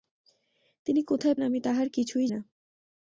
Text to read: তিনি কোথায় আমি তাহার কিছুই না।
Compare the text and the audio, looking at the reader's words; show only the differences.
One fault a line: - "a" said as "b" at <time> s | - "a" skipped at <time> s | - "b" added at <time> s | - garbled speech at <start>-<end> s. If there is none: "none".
none